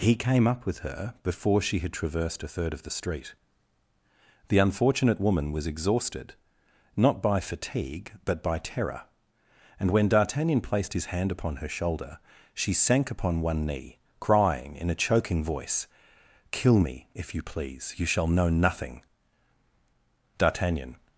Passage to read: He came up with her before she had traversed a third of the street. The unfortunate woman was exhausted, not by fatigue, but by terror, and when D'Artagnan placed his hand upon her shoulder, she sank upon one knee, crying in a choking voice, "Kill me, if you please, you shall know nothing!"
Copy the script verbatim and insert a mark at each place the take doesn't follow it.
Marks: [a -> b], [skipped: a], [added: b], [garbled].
He came up with her before she had traversed a third of the street. The unfortunate woman was exhausted, not by fatigue, but by terror, and when D'Artagnan placed his hand upon her shoulder, she sank upon one knee, crying in a choking voice, "Kill me, if you please, you shall know nothing!" [added: D'Artagnan]